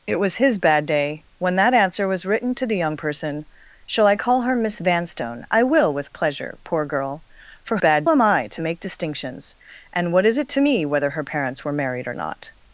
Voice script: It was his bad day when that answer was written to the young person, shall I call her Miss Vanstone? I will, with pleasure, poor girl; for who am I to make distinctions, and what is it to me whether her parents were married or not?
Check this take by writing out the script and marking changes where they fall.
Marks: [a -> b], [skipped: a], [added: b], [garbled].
It was his bad day when that answer was written to the young person, shall I call her Miss Vanstone? I will, with pleasure, poor girl; for [who -> bad] am I to make distinctions, and what is it to me whether her parents were married or not?